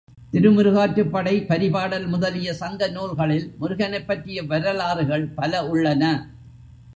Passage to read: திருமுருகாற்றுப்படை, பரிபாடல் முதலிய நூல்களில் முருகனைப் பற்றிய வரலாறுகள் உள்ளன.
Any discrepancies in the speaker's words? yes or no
yes